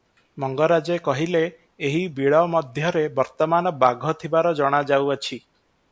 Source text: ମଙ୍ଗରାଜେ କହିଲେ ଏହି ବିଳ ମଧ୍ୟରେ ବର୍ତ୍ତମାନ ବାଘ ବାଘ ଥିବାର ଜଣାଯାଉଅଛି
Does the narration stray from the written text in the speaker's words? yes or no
yes